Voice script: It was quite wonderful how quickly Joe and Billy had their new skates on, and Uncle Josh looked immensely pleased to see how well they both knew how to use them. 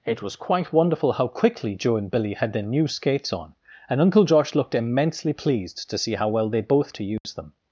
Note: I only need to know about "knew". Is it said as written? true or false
false